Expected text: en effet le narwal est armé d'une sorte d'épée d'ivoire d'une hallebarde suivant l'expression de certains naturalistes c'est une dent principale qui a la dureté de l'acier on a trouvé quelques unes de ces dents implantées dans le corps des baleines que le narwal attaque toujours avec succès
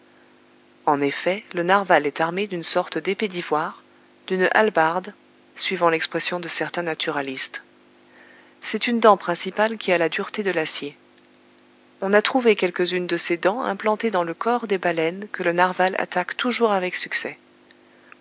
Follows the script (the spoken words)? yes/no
yes